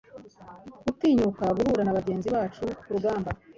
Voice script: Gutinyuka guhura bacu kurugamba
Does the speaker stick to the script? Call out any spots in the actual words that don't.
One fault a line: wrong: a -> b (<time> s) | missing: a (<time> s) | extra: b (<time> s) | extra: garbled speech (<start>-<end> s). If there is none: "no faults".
extra: na bagenzi (1.8 s)